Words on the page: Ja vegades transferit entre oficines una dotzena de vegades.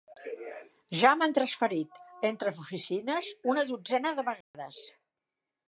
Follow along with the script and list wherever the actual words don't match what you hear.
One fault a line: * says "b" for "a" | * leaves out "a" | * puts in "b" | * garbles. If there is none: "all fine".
* says "m'han" for "vegades"